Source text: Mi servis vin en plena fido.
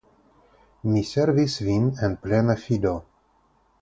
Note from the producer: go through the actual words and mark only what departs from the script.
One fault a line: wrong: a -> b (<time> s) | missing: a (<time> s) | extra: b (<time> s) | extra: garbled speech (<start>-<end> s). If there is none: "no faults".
no faults